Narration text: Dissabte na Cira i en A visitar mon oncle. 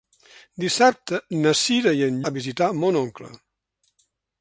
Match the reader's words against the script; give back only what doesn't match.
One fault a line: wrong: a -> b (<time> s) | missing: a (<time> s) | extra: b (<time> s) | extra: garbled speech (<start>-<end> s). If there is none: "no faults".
no faults